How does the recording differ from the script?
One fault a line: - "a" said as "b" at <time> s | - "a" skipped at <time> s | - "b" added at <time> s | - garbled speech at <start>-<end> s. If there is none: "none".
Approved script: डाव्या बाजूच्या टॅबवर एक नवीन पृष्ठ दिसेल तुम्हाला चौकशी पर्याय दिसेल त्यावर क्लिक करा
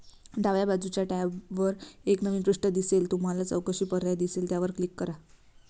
none